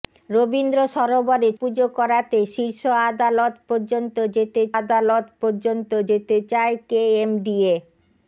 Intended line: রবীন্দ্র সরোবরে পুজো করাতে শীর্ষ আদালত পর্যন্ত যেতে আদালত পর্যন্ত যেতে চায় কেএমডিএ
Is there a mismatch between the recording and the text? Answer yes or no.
no